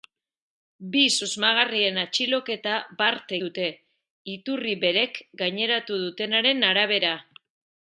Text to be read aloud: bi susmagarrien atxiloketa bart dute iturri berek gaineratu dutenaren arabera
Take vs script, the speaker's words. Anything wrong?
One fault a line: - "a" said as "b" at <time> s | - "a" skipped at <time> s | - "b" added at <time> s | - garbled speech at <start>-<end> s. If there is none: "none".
none